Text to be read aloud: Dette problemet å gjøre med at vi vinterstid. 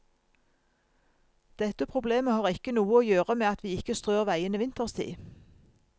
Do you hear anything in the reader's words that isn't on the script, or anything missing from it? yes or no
yes